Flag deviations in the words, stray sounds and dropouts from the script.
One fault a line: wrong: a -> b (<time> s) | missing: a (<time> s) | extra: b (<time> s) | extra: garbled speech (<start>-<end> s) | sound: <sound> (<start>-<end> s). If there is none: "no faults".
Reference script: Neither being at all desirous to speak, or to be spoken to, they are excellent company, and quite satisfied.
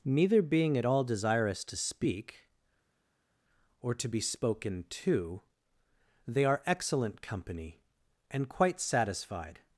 no faults